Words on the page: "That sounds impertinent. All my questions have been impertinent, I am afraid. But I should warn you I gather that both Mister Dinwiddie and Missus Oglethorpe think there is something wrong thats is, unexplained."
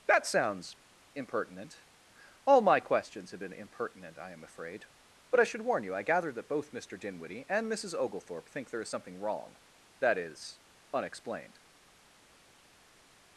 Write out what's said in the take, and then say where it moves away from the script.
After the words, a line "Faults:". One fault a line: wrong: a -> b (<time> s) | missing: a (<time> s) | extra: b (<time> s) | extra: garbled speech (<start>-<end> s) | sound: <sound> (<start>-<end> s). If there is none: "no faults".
"That sounds impertinent. All my questions have been impertinent, I am afraid. But I should warn you I gather that both Mister Dinwiddie and Missus Oglethorpe think there is something wrong that is, unexplained."
Faults:
wrong: thats -> that (10.0 s)